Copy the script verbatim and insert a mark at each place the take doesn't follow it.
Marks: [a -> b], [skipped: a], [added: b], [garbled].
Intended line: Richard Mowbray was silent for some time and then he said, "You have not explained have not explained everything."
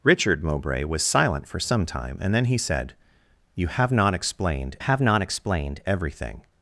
Richard Mowbray was silent for some time and then he said, "You have not explained have not explained everything."